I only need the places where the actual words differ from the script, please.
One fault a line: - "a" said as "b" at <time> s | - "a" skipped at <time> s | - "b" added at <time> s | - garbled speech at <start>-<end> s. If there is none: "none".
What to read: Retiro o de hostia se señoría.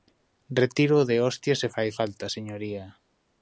- "fai falta" added at 1.7 s